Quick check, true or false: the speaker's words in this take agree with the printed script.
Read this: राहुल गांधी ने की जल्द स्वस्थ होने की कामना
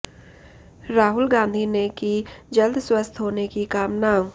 true